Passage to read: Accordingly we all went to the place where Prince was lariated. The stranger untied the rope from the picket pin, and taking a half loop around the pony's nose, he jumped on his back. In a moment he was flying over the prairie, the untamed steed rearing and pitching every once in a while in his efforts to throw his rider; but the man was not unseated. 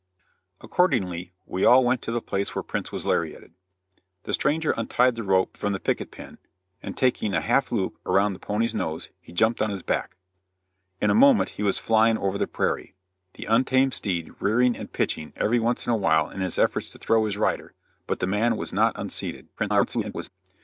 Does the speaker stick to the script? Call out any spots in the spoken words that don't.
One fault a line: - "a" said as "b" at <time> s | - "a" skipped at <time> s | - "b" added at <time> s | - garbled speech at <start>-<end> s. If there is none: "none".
- garbled speech at 19.6-20.3 s